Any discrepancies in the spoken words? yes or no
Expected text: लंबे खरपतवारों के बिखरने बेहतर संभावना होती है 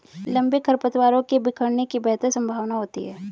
yes